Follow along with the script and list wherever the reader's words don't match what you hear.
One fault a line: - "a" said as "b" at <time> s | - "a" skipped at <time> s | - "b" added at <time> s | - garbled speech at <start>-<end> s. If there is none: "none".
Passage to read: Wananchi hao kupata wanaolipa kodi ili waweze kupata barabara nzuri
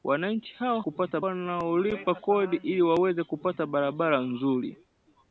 none